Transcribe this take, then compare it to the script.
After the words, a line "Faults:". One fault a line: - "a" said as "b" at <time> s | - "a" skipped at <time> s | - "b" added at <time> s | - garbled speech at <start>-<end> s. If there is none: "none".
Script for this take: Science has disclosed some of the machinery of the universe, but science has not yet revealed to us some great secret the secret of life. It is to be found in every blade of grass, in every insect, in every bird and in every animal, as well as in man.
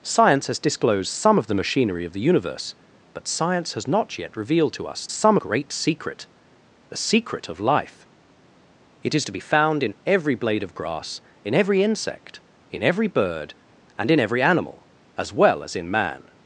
Science has disclosed some of the machinery of the universe, but science has not yet revealed to us some great secret the secret of life. It is to be found in every blade of grass, in every insect, in every bird and in every animal, as well as in man.
Faults:
none